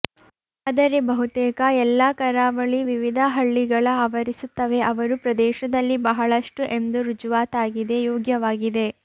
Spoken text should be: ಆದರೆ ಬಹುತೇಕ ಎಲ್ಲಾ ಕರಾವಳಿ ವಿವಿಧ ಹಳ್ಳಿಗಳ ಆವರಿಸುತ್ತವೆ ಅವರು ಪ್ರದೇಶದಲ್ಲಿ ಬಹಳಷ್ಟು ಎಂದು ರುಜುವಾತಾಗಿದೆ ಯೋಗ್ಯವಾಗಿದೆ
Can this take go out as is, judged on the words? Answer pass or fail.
pass